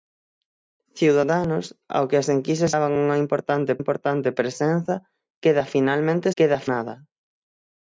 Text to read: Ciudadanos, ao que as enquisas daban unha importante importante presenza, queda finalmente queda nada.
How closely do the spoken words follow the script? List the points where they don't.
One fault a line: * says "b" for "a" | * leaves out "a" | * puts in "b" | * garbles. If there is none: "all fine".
all fine